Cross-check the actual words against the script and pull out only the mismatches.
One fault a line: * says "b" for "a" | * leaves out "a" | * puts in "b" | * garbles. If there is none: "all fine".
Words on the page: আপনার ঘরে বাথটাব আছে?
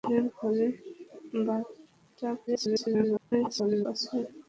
* garbles